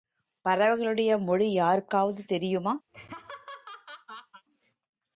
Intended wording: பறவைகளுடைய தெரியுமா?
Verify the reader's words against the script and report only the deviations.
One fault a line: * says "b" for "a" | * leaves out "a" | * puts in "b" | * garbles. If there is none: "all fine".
* puts in "மொழி யாருக்காவது"